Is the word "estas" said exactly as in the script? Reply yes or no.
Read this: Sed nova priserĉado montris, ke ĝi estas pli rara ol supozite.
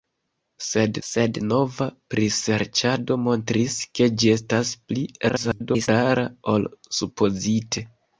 yes